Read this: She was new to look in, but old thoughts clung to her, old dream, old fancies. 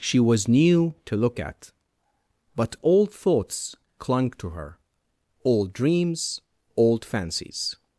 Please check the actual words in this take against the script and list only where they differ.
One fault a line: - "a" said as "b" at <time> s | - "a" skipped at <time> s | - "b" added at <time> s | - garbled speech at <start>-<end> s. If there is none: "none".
- "in" said as "at" at 1.4 s
- "dream" said as "dreams" at 5.7 s